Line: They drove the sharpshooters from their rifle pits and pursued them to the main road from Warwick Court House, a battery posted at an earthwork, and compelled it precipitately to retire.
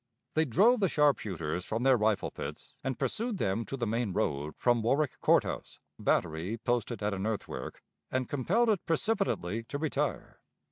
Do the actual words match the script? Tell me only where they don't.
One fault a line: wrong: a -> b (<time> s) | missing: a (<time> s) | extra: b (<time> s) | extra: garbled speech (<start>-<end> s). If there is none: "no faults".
no faults